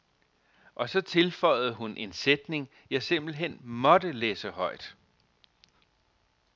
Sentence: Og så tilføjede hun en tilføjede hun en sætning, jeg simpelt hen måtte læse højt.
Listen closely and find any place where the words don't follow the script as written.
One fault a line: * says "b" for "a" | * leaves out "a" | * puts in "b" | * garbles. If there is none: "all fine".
* leaves out "tilføjede hun en"